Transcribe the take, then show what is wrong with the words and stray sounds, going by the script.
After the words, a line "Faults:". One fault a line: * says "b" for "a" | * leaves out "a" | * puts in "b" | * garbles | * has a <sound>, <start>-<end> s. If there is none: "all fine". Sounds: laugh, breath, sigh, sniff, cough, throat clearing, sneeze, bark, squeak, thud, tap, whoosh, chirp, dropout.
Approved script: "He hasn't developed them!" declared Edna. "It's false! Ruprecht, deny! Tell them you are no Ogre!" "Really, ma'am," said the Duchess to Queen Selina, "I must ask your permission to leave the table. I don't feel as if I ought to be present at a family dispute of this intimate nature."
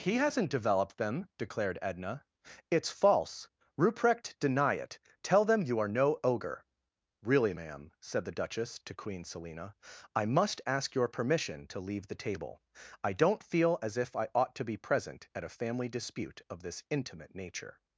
"He hasn't developed them!" declared Edna. "It's false! Ruprecht, deny it! Tell them you are no Ogre!" "Really, ma'am," said the Duchess to Queen Selina, "I must ask your permission to leave the table. I don't feel as if I ought to be present at a family dispute of this intimate nature."
Faults:
* puts in "it"